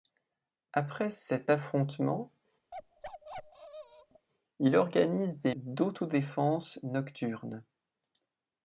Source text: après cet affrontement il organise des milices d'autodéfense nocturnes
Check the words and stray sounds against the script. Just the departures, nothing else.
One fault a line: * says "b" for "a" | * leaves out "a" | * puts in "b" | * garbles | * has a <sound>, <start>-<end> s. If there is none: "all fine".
* has a bark, 2.7-4.3 s
* leaves out "milices"